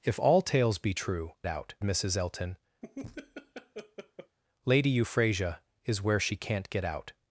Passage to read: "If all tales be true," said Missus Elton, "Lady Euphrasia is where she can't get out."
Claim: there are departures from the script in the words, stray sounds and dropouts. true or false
true